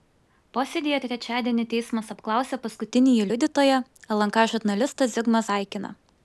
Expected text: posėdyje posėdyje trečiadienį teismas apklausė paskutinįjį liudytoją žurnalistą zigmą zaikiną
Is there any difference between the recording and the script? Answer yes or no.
yes